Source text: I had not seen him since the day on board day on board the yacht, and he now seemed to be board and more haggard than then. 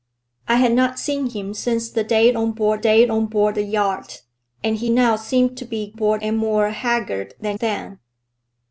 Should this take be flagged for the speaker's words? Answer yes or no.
no